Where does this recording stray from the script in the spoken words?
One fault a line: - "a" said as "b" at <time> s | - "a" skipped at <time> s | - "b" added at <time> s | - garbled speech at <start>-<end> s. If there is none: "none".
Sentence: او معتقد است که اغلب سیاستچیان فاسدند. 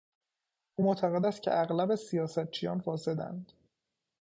none